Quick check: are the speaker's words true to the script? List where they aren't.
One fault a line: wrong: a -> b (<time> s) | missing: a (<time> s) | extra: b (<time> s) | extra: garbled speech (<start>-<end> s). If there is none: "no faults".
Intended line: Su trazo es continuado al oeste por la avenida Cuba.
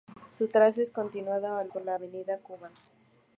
missing: oeste (1.7 s)